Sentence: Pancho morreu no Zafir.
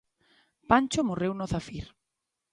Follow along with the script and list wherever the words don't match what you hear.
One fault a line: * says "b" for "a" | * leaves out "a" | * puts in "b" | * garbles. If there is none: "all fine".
all fine